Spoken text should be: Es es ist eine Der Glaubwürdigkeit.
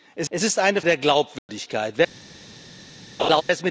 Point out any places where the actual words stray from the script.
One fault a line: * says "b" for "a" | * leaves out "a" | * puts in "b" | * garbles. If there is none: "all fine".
all fine